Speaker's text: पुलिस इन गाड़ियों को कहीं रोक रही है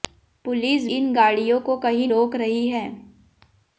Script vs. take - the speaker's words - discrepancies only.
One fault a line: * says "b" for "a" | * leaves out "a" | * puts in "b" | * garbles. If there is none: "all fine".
all fine